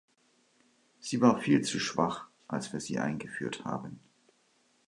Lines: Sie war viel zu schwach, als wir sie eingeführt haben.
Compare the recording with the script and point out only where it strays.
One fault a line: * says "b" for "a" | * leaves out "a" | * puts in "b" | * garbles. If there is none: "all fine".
all fine